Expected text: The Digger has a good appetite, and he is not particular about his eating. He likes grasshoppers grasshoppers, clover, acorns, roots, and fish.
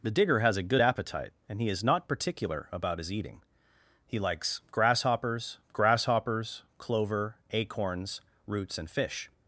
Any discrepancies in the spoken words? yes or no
no